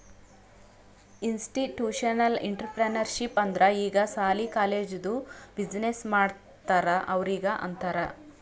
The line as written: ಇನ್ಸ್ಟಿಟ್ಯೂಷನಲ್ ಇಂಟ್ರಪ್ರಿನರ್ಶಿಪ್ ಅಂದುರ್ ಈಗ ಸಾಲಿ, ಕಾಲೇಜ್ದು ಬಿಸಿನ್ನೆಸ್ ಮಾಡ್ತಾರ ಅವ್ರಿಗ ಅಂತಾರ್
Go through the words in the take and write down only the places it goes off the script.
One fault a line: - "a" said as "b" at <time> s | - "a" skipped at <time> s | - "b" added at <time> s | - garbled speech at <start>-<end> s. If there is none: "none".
none